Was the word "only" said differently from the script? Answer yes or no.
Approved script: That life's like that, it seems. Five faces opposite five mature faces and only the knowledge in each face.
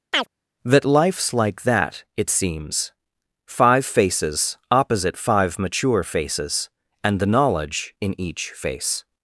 yes